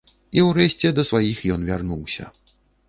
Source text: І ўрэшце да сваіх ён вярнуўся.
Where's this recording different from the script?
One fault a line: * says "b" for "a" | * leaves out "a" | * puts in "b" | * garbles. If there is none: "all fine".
all fine